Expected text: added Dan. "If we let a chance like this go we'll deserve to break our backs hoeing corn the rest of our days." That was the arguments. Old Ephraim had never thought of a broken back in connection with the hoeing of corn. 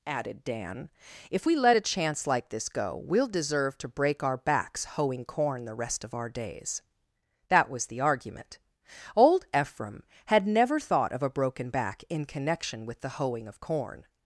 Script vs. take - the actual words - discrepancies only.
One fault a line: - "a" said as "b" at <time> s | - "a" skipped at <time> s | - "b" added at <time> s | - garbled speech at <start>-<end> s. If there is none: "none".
- "arguments" said as "argument" at 8.0 s